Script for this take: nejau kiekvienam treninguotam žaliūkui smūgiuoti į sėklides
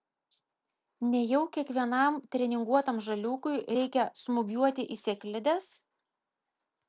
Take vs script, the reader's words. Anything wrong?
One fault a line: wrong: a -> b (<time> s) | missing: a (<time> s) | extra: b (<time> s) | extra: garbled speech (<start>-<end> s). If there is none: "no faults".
extra: reikia (3.8 s)